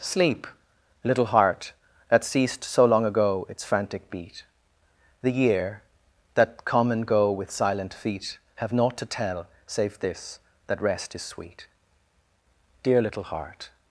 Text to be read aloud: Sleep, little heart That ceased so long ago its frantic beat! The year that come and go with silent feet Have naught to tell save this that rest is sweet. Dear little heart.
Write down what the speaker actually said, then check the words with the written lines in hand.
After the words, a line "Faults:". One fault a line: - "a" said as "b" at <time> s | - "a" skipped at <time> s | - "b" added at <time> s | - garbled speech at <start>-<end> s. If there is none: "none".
Sleep, little heart That ceased so long ago its frantic beat! The year that come and go with silent feet Have naught to tell save this that rest is sweet. Dear little heart.
Faults:
none